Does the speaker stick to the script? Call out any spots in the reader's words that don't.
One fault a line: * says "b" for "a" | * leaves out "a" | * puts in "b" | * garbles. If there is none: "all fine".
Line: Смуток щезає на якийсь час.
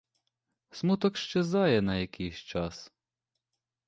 all fine